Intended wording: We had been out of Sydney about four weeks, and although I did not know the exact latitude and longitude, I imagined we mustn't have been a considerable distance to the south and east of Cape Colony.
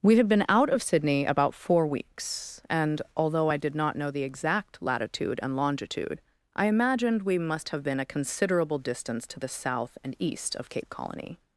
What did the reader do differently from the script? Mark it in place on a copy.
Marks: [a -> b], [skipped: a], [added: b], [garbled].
We had been out of Sydney about four weeks, and although I did not know the exact latitude and longitude, I imagined we [mustn't -> must] have been a considerable distance to the south and east of Cape Colony.